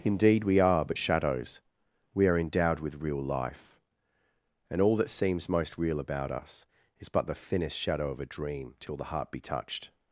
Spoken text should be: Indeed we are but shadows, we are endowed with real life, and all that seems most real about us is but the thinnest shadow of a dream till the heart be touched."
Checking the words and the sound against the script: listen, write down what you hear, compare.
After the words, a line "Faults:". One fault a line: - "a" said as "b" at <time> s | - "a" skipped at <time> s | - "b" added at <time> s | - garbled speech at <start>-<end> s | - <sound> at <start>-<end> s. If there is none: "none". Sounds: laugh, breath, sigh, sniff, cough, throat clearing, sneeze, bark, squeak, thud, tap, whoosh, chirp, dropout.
Indeed we are but shadows, we are endowed with real life, and all that seems most real about us is but the thinnest shadow of a dream till the heart be touched."
Faults:
none